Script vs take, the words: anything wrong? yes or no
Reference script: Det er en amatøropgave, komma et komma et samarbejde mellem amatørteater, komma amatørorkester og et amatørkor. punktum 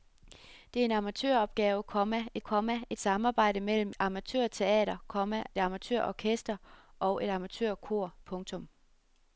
no